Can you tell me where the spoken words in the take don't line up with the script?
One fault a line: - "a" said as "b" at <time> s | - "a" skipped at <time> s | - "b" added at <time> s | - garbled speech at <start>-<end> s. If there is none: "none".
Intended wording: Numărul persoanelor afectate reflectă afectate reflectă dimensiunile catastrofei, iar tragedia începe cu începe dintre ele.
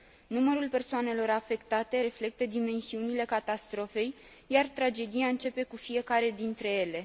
- "afectate reflectă" skipped at 2.4 s
- "începe" said as "fiecare" at 5.8 s